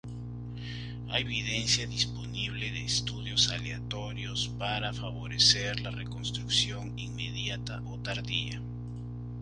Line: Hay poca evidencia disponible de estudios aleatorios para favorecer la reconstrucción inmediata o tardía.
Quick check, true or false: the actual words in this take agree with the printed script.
false